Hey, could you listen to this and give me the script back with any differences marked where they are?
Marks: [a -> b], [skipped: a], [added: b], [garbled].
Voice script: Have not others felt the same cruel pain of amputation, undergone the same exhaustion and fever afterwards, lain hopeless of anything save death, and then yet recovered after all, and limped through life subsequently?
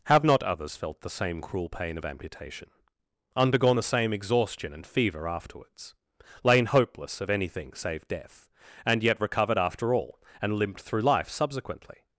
Have not others felt the same cruel pain of amputation, undergone the same exhaustion and fever afterwards, lain hopeless of anything save death, and [skipped: then] yet recovered after all, and limped through life subsequently?